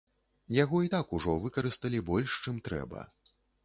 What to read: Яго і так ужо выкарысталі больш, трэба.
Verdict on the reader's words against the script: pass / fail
fail